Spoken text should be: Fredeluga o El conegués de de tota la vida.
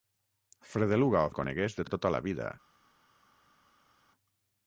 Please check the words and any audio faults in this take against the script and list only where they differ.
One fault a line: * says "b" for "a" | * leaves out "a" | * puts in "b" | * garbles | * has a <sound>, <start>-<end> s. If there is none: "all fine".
all fine